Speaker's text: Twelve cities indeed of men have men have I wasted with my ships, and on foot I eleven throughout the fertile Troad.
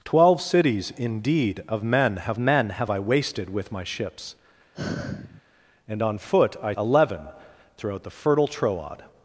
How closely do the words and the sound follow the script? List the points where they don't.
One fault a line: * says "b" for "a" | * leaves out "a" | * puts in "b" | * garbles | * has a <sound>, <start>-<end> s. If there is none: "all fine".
* has a sigh, 4.7-5.4 s